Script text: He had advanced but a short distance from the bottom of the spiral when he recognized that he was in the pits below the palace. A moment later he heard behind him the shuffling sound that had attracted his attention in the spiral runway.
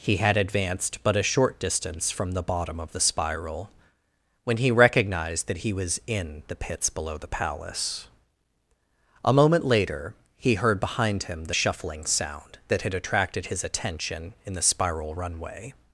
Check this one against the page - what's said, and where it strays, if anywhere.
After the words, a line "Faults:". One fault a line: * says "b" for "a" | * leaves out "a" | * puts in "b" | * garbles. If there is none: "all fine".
He had advanced but a short distance from the bottom of the spiral when he recognized that he was in the pits below the palace. A moment later he heard behind him the shuffling sound that had attracted his attention in the spiral runway.
Faults:
all fine